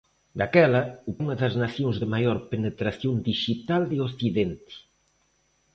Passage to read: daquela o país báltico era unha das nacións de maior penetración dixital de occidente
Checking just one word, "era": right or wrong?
wrong